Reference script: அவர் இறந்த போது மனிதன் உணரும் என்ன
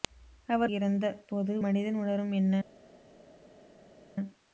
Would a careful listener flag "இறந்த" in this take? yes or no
no